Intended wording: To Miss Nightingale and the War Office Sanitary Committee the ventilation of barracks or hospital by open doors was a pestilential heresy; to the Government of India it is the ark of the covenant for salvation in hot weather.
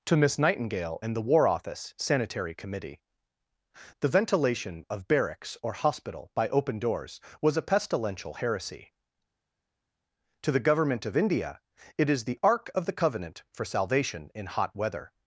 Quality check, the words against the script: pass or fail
pass